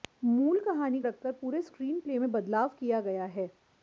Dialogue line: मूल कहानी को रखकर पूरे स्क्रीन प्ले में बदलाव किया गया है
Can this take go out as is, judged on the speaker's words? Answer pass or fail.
fail